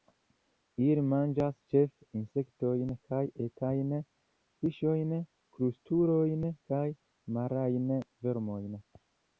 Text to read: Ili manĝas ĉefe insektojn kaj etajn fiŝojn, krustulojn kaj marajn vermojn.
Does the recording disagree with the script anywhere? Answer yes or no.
no